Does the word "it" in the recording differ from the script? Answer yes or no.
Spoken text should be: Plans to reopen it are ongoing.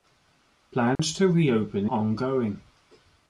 yes